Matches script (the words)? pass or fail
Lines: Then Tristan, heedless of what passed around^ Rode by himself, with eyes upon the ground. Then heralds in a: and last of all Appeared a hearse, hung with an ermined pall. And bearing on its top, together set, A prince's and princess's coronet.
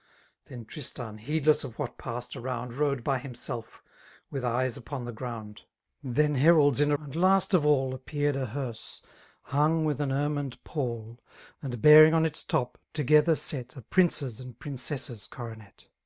pass